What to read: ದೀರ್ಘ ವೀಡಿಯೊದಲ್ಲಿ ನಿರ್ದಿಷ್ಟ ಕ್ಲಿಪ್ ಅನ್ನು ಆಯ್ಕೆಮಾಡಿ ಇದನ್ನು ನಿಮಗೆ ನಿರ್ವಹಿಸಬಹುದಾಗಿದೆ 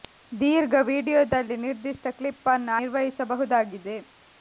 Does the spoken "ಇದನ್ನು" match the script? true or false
false